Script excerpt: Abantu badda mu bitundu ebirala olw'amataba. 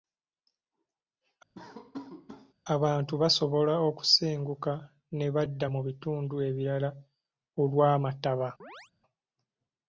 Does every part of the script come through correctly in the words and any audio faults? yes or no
no